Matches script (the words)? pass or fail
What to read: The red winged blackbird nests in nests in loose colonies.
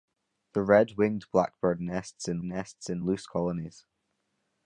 pass